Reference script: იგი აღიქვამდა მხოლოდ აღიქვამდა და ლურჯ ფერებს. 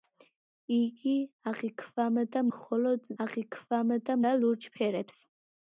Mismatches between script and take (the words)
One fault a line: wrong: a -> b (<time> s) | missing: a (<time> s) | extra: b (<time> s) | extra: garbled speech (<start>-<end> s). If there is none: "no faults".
no faults